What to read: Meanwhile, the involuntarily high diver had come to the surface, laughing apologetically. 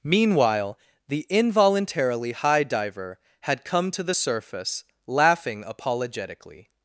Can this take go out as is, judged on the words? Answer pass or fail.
pass